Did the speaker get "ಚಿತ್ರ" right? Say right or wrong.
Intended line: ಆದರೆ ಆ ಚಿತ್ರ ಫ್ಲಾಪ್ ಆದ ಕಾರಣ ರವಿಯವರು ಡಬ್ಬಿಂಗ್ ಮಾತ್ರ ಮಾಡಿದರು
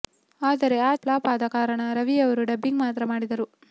wrong